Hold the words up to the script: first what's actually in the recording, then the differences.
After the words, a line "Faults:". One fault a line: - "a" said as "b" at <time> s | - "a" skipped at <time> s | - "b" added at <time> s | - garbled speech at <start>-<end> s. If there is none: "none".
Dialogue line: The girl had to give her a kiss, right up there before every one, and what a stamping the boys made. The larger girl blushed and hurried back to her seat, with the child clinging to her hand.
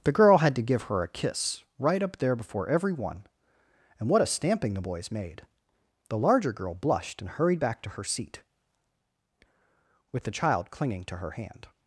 The girl had to give her a kiss, right up there before every one, and what a stamping the boys made. The larger girl blushed and hurried back to her seat, with the child clinging to her hand.
Faults:
none